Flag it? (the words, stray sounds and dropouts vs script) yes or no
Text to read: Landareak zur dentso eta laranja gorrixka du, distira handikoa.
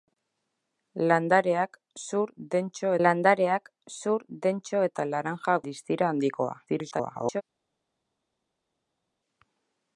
yes